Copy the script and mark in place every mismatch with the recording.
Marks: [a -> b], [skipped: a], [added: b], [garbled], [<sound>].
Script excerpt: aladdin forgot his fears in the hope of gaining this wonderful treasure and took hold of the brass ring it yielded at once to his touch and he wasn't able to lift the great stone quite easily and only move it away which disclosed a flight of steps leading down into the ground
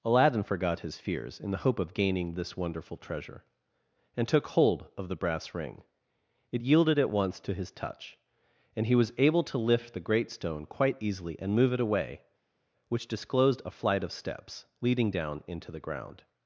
aladdin forgot his fears in the hope of gaining this wonderful treasure and took hold of the brass ring it yielded at once to his touch and he [wasn't -> was] able to lift the great stone quite easily and [skipped: only] move it away which disclosed a flight of steps leading down into the ground